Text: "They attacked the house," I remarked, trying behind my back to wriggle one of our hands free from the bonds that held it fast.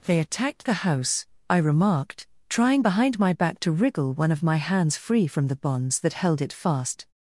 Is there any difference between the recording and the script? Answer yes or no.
yes